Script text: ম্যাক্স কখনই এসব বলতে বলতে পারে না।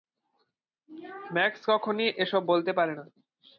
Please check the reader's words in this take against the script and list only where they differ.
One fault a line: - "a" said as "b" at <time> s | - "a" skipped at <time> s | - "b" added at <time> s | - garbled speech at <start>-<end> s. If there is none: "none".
- "বলতে" skipped at 2.7 s